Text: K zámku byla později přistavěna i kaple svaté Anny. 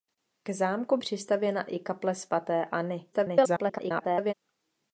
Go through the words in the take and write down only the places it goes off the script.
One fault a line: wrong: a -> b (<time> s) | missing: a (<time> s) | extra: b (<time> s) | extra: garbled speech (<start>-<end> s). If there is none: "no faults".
missing: byla později (1.0 s)
extra: garbled speech (3.1-4.3 s)